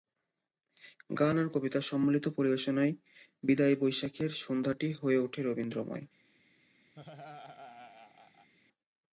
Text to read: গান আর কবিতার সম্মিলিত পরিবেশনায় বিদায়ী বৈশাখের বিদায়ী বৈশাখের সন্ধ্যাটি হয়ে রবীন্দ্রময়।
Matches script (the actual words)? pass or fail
fail